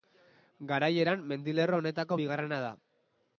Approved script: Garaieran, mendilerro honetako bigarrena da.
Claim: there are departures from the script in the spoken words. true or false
false